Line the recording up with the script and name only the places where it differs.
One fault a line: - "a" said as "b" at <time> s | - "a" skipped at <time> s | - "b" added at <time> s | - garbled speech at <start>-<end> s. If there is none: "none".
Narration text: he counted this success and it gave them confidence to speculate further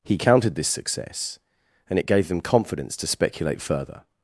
none